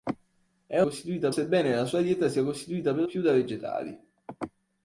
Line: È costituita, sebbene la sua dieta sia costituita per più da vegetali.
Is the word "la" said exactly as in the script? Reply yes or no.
yes